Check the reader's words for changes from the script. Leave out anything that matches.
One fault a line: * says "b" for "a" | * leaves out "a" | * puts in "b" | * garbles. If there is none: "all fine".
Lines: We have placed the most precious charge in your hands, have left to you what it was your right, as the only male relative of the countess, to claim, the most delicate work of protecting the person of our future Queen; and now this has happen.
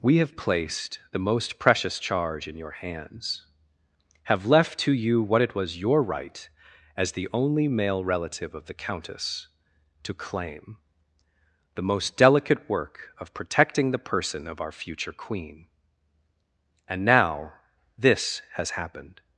* says "happened" for "happen"